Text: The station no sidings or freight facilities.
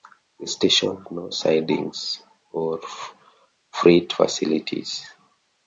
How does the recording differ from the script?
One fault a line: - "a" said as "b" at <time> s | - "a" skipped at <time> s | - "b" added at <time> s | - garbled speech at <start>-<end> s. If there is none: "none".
none